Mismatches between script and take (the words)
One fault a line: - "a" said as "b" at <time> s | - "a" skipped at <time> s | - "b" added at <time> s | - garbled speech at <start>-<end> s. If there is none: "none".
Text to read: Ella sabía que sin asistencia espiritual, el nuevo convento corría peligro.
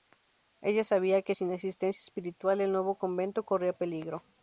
none